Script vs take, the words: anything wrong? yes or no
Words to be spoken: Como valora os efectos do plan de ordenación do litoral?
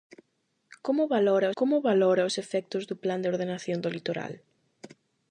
yes